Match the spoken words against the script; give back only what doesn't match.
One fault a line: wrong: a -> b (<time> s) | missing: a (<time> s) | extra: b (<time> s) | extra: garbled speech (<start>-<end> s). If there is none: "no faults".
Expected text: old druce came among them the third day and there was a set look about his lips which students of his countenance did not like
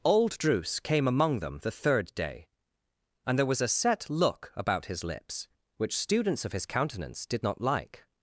no faults